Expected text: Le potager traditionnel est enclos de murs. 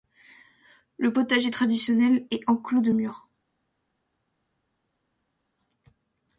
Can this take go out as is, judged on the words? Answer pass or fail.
pass